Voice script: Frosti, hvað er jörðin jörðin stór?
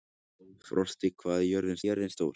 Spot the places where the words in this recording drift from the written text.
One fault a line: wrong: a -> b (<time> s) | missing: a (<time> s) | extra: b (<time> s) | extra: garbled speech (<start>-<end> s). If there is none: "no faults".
no faults